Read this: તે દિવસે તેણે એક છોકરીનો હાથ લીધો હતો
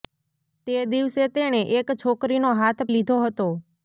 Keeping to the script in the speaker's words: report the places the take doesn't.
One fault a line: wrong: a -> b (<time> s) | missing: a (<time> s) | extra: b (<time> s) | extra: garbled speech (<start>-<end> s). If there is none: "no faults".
no faults